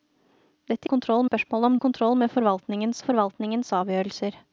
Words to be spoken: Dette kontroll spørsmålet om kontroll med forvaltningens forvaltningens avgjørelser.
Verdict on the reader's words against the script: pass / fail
pass